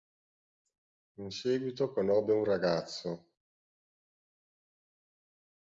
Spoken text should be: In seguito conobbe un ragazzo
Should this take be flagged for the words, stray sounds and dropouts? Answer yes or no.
no